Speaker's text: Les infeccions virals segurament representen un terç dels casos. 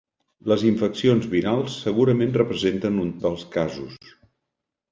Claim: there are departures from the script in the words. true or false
true